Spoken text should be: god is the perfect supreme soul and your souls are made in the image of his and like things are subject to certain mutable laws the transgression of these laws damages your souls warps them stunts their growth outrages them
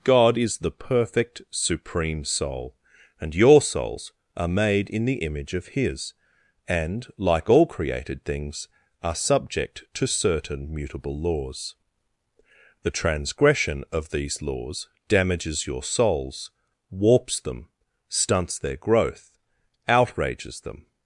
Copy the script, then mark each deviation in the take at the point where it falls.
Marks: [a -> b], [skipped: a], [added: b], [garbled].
god is the perfect supreme soul and your souls are made in the image of his and like [added: all created] things are subject to certain mutable laws the transgression of these laws damages your souls warps them stunts their growth outrages them